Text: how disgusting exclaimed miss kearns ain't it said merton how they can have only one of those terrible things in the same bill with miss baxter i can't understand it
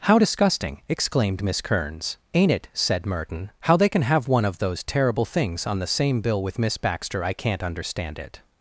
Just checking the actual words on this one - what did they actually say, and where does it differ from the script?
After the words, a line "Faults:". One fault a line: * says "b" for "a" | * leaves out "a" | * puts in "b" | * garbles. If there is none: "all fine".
how disgusting exclaimed miss kearns ain't it said merton how they can have one of those terrible things on the same bill with miss baxter i can't understand it
Faults:
* leaves out "only"
* says "on" for "in"